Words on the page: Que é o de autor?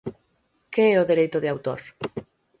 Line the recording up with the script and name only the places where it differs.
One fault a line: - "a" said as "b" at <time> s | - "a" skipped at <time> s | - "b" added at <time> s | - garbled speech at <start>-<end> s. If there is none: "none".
- "dereito" added at 1.1 s